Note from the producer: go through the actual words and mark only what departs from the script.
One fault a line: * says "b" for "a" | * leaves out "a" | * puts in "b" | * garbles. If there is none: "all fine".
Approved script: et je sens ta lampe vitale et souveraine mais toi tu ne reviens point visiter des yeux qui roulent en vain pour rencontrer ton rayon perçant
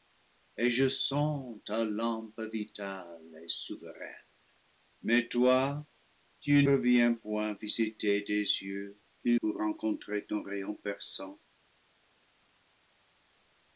* leaves out "ne"
* leaves out "roulent en vain"